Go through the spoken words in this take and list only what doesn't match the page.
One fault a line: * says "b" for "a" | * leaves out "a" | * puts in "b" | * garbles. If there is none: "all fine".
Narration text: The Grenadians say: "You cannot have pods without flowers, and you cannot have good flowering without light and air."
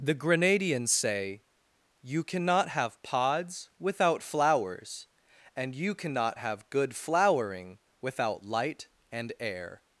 all fine